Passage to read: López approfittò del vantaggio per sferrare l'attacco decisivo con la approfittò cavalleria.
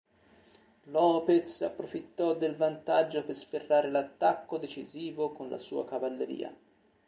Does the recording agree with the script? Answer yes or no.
no